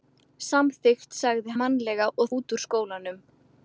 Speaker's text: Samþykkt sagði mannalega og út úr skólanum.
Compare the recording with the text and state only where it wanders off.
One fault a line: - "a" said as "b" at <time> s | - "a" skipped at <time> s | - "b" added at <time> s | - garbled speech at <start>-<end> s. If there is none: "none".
none